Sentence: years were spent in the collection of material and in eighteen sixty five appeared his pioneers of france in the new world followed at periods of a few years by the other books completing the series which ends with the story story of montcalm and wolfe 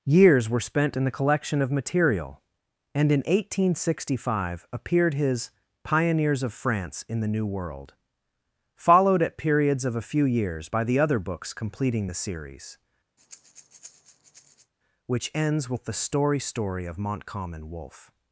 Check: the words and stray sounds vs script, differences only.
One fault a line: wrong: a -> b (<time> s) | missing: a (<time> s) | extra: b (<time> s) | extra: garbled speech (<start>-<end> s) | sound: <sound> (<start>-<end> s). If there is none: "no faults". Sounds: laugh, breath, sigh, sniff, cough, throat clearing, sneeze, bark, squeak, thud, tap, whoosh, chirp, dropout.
sound: breath (13.2-14.7 s)